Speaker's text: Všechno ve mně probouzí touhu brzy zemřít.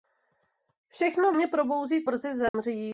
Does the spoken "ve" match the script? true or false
false